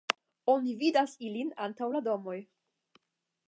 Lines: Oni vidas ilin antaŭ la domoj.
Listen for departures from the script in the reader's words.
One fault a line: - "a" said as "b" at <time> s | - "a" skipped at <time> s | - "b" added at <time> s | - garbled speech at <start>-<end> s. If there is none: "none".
none